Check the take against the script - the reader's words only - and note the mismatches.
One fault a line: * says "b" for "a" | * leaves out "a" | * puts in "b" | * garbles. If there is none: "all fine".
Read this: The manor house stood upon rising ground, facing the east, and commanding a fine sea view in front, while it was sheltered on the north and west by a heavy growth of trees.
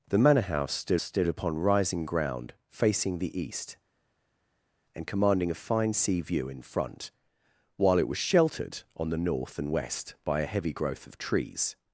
* puts in "stood"